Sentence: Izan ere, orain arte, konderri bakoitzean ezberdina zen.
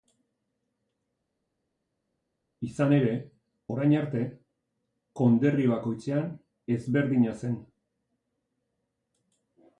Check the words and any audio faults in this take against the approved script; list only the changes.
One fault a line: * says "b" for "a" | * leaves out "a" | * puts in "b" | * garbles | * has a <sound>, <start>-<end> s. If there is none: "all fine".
all fine